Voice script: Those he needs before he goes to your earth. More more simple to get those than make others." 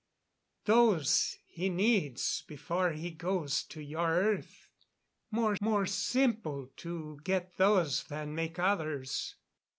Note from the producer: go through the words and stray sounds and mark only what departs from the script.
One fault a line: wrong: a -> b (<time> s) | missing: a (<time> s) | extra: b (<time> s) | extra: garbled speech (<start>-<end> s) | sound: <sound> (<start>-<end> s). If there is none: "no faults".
no faults